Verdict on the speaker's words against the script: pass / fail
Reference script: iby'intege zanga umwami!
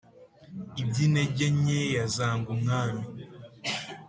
fail